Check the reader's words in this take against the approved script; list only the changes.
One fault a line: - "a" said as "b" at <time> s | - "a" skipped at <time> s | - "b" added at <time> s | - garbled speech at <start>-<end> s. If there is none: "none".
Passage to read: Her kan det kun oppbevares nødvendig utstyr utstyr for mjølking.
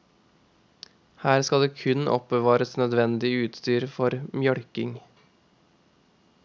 - "kan" said as "skal" at 1.5 s
- "utstyr" skipped at 3.9 s